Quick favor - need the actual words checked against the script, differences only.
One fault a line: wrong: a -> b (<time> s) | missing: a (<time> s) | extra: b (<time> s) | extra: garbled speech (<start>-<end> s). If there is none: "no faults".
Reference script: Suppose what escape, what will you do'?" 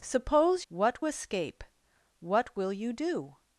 no faults